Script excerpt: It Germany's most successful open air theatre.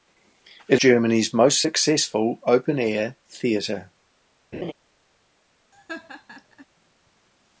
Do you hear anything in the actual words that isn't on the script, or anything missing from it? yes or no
no